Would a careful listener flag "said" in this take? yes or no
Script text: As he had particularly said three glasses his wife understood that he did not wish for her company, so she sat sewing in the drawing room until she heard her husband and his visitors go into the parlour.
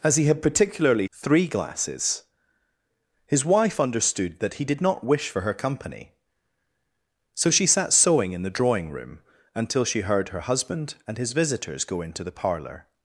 yes